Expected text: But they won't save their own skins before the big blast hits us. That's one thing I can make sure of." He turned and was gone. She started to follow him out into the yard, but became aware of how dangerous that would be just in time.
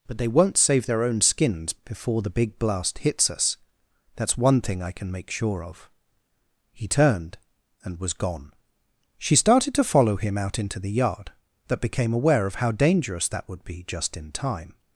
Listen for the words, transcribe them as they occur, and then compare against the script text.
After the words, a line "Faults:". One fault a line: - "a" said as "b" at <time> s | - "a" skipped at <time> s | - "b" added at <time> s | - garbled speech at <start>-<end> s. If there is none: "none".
But they won't save their own skins before the big blast hits us. That's one thing I can make sure of." He turned and was gone. She started to follow him out into the yard, but became aware of how dangerous that would be just in time.
Faults:
none